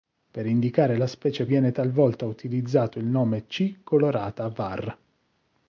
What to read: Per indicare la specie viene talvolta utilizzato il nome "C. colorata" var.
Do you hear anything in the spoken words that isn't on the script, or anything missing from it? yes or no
no